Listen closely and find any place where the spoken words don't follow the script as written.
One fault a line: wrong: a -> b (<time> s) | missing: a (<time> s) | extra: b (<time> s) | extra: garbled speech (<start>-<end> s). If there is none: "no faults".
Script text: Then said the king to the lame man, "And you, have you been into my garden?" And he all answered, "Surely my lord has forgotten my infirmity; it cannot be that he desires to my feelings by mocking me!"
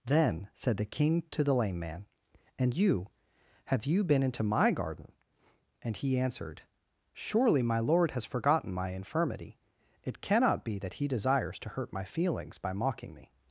missing: all (6.2 s)
extra: hurt (11.7 s)